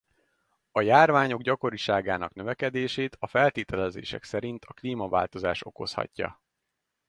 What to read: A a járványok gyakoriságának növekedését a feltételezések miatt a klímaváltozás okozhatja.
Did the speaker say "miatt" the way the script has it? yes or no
no